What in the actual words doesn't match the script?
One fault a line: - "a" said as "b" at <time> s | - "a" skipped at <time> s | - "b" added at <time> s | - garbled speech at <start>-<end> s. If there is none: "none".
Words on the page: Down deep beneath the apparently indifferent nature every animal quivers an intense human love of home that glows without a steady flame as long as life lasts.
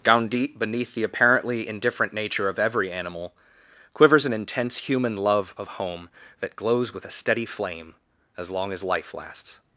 - "of" added at 2.5 s
- "without" said as "with" at 6.9 s